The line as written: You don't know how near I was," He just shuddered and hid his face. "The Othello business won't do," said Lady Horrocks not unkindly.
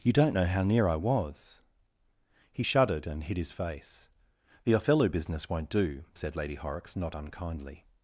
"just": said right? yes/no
no